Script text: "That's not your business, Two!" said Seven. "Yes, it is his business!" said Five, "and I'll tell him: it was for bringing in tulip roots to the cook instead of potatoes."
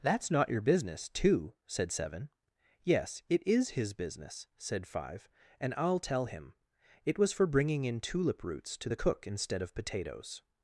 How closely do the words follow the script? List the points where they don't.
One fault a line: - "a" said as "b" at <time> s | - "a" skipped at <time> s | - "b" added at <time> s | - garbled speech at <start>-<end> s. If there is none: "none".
none